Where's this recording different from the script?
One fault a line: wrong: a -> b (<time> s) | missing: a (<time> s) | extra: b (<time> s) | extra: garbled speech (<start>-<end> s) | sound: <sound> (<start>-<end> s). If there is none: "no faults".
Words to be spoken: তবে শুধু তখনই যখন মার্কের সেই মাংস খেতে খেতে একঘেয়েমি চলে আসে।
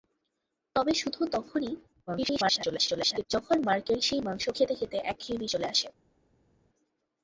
extra: garbled speech (2.1-3.3 s)